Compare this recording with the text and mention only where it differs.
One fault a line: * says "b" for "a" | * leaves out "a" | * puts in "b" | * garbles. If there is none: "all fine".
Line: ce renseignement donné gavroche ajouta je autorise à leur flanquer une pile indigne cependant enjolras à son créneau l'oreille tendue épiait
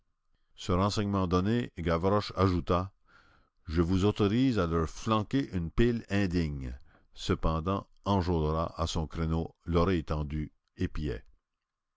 * puts in "vous"